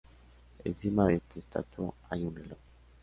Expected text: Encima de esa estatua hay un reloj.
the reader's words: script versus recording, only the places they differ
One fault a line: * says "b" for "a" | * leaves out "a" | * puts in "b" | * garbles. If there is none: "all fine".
* says "esta" for "esa"